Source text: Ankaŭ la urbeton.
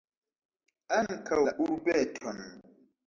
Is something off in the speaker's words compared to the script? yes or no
no